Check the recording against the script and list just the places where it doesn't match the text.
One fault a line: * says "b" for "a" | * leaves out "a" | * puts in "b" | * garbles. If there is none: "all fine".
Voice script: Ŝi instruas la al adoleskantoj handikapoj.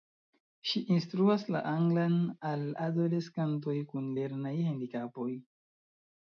* puts in "anglan"
* puts in "kun lernaj"